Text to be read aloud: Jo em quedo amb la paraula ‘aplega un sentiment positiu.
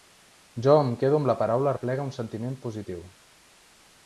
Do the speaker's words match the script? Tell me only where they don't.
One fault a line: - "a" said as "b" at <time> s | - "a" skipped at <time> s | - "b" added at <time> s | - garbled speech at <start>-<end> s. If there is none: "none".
none